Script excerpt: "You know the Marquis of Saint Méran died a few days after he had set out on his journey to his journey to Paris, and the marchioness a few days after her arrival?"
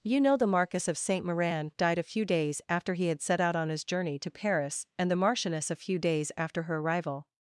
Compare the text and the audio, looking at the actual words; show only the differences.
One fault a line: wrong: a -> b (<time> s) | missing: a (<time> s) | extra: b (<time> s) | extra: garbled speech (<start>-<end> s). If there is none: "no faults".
missing: his journey to (4.3 s)